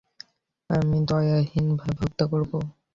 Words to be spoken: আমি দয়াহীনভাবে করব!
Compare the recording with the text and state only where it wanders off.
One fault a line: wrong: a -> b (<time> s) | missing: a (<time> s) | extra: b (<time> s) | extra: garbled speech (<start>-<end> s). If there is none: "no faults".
extra: হত্যা (2.0 s)